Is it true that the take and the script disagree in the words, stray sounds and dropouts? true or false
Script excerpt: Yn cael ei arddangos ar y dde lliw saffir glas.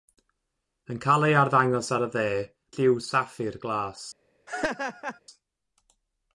true